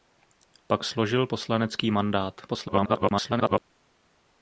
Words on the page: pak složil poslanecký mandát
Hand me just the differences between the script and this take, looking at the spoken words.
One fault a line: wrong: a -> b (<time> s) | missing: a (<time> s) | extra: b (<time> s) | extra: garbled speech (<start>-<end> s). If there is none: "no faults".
extra: garbled speech (2.5-3.6 s)